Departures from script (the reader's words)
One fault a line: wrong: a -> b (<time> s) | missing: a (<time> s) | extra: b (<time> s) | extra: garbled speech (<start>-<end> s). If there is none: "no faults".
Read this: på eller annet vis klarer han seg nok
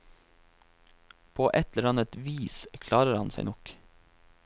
extra: et (1.5 s)